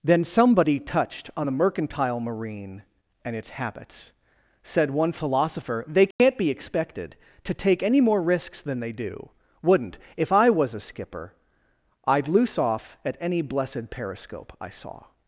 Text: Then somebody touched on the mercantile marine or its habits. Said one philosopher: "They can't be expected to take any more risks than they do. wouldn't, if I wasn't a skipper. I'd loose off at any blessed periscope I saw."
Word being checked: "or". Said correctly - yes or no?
no